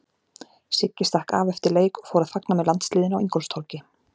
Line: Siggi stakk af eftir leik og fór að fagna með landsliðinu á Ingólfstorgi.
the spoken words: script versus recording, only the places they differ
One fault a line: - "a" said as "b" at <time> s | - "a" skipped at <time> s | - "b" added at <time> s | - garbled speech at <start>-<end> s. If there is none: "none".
none